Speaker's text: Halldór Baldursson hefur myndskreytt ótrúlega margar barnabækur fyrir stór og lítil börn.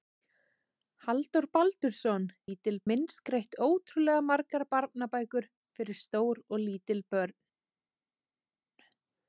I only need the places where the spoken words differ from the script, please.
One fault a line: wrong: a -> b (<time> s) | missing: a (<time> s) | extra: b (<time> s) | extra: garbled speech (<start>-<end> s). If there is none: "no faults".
wrong: hefur -> lítil (2.4 s)